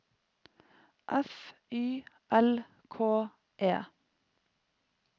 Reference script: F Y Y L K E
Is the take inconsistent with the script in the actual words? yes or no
yes